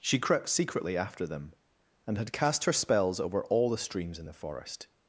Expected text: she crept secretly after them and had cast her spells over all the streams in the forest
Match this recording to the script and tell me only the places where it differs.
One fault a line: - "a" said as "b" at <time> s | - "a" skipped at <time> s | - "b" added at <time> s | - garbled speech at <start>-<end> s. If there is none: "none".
none